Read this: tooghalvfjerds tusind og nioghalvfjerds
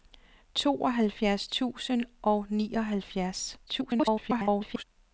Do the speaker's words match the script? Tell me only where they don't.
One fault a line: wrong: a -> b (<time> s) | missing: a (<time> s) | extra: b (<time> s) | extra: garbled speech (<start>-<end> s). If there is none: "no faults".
extra: garbled speech (3.7-4.8 s)